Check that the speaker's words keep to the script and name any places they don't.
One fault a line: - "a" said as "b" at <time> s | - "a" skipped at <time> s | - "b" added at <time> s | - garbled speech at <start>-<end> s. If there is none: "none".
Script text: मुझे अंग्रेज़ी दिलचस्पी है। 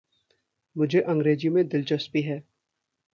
- "में" added at 1.5 s